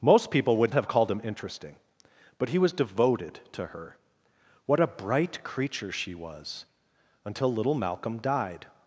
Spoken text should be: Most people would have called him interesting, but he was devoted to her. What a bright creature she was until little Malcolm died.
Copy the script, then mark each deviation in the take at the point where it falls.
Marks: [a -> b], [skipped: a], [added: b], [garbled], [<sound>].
Most people would have called him interesting, but he was devoted to her. What a bright creature she was until little Malcolm died.